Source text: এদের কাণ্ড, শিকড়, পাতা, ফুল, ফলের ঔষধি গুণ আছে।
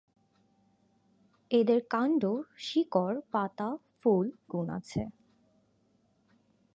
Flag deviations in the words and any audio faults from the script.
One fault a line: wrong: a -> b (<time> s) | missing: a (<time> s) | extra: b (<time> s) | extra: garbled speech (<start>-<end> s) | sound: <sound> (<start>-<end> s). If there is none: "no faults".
missing: ফলের ঔষধি (4.3 s)